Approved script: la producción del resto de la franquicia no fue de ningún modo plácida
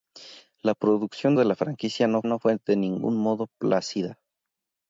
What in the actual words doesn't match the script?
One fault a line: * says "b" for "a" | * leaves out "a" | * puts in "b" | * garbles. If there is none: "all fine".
* leaves out "del resto"
* puts in "no"